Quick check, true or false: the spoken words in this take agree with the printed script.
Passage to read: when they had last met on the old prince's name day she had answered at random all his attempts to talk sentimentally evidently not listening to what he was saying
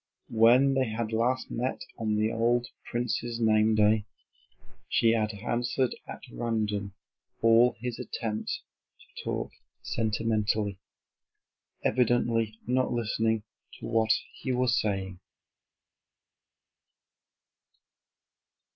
true